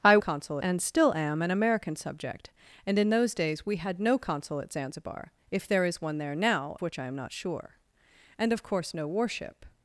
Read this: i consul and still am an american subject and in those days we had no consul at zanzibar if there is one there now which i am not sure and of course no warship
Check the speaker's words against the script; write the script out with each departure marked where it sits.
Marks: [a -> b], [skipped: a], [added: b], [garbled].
i consul and still am an american subject and in those days we had no consul at zanzibar if there is one there now which i am not sure and of course no warship